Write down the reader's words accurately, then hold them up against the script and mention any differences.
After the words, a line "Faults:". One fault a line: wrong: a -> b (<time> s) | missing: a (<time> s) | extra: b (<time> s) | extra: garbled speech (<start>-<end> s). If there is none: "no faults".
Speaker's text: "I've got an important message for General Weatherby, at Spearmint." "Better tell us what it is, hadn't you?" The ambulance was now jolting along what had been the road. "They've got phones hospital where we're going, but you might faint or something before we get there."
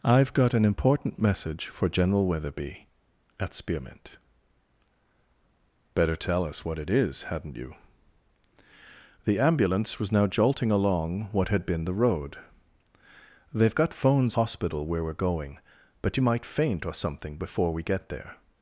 "I've got an important message for General Weatherby, at Spearmint." "Better tell us what it is, hadn't you?" The ambulance was now jolting along what had been the road. "They've got phones hospital where we're going, but you might faint or something before we get there."
Faults:
no faults